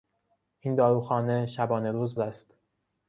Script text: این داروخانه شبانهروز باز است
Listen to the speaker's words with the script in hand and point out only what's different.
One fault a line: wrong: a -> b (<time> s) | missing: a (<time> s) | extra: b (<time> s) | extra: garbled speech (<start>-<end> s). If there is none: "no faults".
missing: باز (2.2 s)